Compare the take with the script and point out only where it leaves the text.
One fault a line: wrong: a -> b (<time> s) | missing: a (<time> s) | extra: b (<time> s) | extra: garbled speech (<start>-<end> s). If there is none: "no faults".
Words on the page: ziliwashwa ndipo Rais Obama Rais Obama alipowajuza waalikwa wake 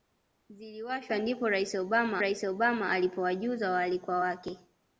no faults